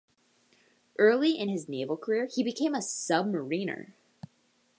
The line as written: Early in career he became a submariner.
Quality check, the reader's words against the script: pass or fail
fail